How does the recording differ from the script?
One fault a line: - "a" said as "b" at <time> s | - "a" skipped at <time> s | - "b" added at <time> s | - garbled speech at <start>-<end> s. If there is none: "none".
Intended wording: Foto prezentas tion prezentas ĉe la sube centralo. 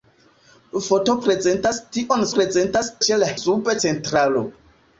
none